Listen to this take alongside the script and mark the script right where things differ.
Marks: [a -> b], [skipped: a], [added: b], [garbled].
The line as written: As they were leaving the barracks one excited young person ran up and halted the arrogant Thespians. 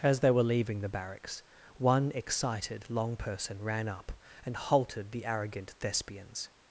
As they were leaving the barracks one excited [young -> long] person ran up and halted the arrogant Thespians.